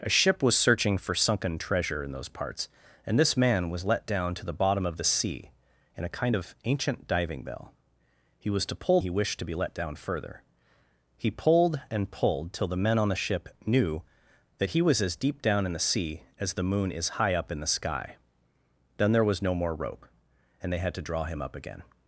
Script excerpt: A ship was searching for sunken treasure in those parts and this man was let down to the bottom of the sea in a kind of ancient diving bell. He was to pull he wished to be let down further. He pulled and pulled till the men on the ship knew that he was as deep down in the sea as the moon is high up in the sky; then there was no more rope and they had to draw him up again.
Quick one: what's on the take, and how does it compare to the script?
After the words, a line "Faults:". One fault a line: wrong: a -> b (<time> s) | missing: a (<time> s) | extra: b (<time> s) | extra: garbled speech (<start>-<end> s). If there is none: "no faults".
A ship was searching for sunken treasure in those parts and this man was let down to the bottom of the sea in a kind of ancient diving bell. He was to pull he wished to be let down further. He pulled and pulled till the men on the ship knew that he was as deep down in the sea as the moon is high up in the sky; then there was no more rope and they had to draw him up again.
Faults:
no faults